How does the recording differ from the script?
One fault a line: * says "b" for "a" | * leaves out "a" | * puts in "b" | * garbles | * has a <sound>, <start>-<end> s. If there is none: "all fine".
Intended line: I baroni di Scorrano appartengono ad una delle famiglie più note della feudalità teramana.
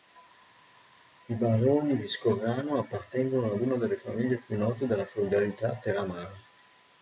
all fine